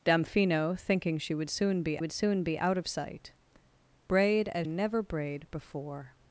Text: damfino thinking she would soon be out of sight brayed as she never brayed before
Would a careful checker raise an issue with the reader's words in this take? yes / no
yes